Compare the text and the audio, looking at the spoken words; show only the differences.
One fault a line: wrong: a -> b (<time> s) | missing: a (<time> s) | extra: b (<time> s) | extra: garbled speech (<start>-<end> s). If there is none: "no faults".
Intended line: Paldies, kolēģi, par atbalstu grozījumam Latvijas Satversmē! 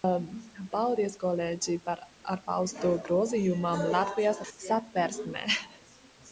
no faults